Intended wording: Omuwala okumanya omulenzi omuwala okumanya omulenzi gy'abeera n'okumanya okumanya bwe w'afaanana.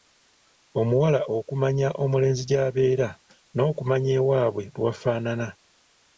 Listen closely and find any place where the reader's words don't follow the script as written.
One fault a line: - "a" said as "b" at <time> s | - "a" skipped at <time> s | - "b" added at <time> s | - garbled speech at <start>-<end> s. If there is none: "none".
- "omuwala okumanya omulenzi" skipped at 2.4 s
- "okumanya" said as "ewaabwe" at 4.2 s